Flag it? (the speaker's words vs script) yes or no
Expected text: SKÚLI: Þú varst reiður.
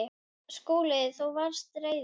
no